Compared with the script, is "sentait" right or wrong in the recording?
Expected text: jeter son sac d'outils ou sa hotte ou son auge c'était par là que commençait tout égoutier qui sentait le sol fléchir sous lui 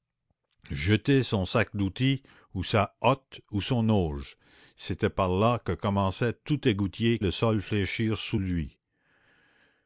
wrong